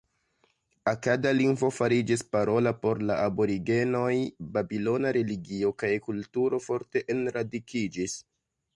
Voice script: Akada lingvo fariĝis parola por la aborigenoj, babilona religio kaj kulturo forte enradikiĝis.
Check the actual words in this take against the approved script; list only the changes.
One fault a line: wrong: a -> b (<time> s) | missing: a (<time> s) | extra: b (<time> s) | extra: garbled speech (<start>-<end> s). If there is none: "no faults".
no faults